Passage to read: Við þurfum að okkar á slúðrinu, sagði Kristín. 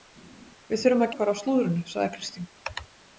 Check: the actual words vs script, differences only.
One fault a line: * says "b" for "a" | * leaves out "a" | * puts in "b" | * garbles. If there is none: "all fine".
all fine